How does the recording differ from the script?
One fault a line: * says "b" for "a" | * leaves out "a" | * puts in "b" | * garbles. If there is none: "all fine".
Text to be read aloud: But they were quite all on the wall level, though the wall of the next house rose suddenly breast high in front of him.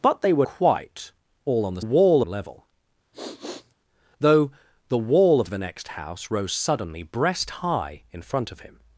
all fine